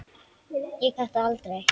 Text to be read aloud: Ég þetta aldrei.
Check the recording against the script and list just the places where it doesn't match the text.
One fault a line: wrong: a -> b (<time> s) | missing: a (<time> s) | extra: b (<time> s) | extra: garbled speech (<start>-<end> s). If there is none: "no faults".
no faults